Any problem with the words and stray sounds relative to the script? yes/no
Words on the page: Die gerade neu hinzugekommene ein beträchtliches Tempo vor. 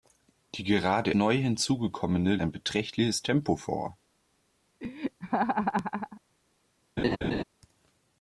yes